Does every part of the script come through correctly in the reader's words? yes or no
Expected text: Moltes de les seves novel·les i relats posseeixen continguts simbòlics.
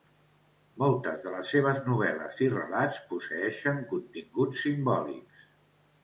yes